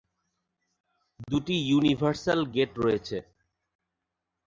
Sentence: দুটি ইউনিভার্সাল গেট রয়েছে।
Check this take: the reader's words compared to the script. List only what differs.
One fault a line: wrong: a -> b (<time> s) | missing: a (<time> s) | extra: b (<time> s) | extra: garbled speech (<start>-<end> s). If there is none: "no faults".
no faults